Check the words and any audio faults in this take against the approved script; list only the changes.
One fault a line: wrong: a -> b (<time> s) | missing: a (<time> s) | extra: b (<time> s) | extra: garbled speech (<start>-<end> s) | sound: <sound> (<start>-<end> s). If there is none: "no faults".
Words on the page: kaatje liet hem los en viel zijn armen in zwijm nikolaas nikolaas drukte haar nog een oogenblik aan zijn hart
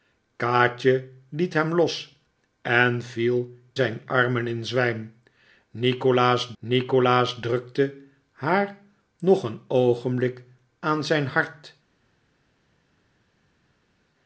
no faults